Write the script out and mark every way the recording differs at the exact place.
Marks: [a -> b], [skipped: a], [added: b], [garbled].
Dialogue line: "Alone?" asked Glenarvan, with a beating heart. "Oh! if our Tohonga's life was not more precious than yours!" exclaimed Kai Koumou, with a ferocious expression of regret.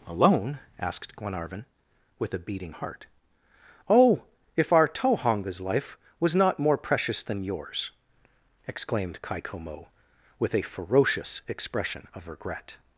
"Alone?" asked Glenarvan, with a beating heart. "Oh! if our Tohonga's life was not more precious than yours!" exclaimed Kai Koumou, with a ferocious expression of regret.